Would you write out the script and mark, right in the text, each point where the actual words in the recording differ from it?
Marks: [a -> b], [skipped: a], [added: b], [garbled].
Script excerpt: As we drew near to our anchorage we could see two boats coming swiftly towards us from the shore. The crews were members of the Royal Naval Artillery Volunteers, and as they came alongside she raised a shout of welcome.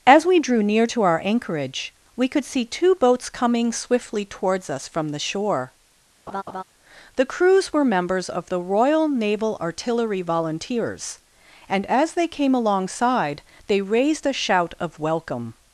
As we drew near to our anchorage we could see two boats coming swiftly towards us from the shore. The crews were members of the Royal Naval Artillery Volunteers, and as they came alongside [she -> they] raised a shout of welcome.